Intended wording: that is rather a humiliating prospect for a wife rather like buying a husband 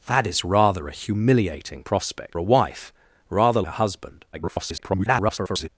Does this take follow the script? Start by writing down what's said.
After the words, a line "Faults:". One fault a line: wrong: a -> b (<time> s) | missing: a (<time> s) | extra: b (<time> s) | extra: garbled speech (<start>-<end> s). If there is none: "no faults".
that is rather a humiliating prospect a wife rather a husband [garbled]
Faults:
missing: for (2.4 s)
missing: like buying (3.6 s)
extra: garbled speech (4.3-5.7 s)